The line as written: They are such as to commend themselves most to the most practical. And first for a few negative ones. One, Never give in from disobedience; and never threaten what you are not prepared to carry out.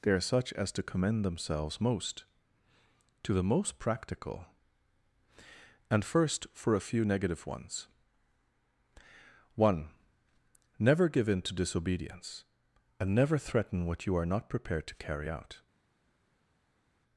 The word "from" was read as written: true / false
false